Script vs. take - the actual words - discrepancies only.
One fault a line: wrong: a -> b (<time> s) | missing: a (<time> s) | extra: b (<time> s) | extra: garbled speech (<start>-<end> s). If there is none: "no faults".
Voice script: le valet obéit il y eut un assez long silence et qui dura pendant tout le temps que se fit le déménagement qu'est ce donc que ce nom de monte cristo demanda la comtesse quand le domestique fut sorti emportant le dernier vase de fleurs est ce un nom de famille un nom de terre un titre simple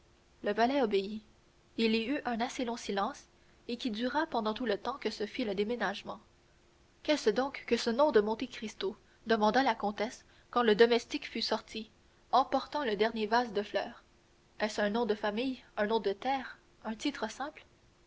no faults